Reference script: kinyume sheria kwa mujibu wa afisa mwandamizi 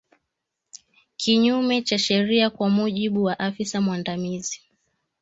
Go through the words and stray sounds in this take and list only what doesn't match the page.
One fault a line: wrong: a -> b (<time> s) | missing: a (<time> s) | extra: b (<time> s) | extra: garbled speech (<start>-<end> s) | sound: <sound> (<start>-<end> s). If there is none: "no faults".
extra: cha (1.8 s)